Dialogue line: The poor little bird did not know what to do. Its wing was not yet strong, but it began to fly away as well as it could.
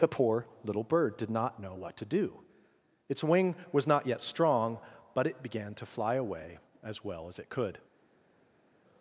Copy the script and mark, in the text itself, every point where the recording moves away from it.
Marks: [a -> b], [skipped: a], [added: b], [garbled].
The poor little bird did not know what to do. Its wing was not yet strong, but it began to fly away as well as it could.